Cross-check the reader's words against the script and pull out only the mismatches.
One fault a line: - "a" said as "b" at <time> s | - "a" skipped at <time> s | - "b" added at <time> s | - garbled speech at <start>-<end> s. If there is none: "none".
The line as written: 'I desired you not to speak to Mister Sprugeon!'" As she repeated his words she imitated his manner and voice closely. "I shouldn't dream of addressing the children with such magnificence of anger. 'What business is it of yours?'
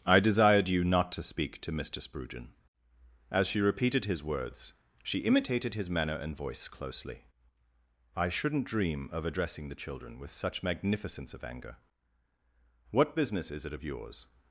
none